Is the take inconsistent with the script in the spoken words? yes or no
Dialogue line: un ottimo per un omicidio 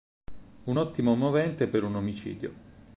yes